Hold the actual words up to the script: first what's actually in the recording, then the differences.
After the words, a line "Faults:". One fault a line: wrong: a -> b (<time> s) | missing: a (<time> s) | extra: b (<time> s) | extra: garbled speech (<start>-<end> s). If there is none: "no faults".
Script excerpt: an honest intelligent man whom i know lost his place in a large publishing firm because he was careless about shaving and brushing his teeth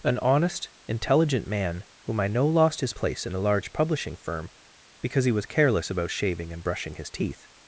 an honest intelligent man whom i know lost his place in a large publishing firm because he was careless about shaving and brushing his teeth
Faults:
no faults